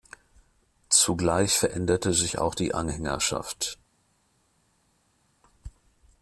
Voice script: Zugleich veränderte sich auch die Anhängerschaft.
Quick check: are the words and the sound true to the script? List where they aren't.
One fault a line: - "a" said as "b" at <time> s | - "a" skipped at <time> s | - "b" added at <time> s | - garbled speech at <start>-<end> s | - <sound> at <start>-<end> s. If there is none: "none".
none